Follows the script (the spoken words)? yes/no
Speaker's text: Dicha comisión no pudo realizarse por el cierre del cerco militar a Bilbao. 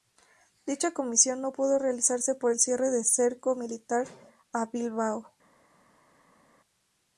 yes